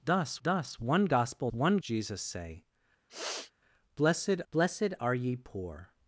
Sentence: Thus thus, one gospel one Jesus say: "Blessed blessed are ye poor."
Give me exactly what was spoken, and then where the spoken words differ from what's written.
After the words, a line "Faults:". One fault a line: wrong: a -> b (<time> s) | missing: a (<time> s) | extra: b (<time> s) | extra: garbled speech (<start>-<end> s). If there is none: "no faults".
Thus thus, one gospel one Jesus say: "Blessed blessed are ye poor."
Faults:
no faults